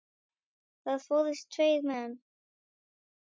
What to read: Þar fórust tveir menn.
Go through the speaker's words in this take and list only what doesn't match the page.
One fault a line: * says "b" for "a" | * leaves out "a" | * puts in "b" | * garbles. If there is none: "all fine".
all fine